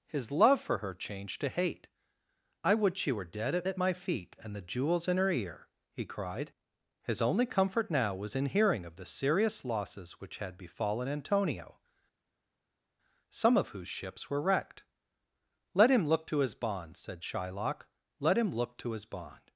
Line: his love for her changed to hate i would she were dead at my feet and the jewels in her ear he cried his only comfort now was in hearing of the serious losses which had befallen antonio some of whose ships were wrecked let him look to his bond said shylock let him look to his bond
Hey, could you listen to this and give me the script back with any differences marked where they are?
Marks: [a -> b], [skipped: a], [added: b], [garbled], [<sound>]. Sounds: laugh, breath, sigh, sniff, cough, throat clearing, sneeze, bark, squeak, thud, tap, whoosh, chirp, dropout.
his love for her changed to hate i would she were dead at [added: at] my feet and the jewels in her ear he cried his only comfort now was in hearing of the serious losses which had befallen antonio some of whose ships were wrecked let him look to his bond said shylock let him look to his bond